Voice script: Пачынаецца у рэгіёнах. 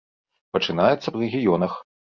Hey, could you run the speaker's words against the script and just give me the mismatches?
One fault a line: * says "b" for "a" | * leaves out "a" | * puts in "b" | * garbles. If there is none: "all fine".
all fine